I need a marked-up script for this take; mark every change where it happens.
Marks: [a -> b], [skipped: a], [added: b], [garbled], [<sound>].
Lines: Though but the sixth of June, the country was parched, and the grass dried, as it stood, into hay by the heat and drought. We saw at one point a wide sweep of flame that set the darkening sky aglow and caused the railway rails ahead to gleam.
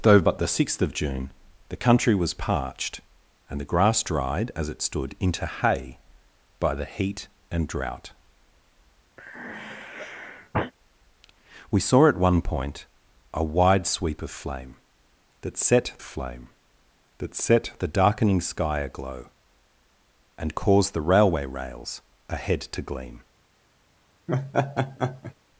Though but the sixth of June, the country was parched, and the grass dried, as it stood, into hay by the heat and drought. [sigh] We saw at one point a wide sweep of flame that set [added: flame that set] the darkening sky aglow and caused the railway rails ahead to gleam. [laugh]